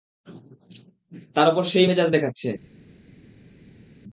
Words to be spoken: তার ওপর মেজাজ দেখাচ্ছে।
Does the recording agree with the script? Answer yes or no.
no